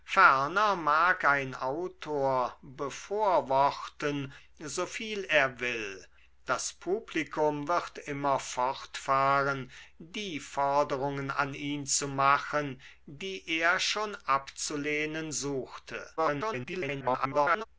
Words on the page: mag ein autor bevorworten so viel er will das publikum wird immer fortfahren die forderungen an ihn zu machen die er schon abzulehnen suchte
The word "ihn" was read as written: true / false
true